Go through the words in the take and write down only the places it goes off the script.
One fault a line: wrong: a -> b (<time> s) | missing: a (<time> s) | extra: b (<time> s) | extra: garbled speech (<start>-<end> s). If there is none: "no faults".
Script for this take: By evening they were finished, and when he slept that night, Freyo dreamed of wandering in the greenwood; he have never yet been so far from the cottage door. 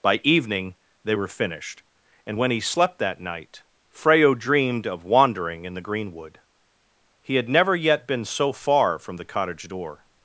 wrong: have -> had (7.3 s)